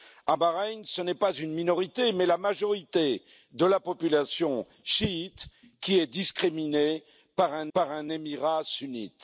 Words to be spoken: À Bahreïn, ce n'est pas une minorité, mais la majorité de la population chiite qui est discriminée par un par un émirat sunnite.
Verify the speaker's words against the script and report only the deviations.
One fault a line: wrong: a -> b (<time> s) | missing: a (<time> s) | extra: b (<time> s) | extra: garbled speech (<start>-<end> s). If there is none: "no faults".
no faults